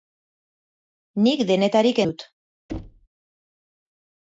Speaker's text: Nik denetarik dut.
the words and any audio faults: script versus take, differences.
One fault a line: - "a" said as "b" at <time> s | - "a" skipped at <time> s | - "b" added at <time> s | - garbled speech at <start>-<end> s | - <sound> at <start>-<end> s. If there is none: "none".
- thud at 2.7-3.1 s